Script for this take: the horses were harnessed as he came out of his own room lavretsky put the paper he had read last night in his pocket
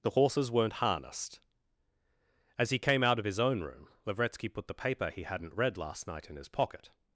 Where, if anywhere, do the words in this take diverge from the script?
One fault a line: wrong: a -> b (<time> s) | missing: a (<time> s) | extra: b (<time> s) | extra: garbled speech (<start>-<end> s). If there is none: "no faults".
wrong: were -> weren't (0.5 s)
wrong: had -> hadn't (5.2 s)